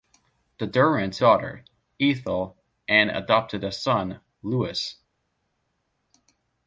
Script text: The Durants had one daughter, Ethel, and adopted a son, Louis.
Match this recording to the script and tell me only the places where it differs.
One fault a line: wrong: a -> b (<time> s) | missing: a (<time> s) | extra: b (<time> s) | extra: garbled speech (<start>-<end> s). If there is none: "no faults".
missing: had one (1.2 s)